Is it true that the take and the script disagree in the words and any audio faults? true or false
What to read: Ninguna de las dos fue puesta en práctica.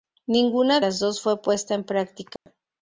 true